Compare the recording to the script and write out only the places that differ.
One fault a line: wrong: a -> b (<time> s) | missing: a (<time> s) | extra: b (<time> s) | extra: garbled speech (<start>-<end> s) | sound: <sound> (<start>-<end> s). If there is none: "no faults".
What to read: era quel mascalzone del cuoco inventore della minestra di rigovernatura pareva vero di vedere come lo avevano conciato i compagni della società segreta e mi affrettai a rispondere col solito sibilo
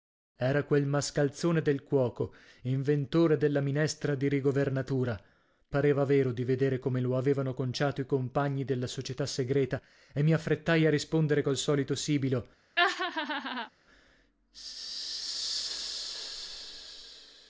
sound: laugh (12.8-13.7 s)